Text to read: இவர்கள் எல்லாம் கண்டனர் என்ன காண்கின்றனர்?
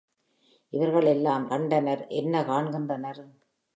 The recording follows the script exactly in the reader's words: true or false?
true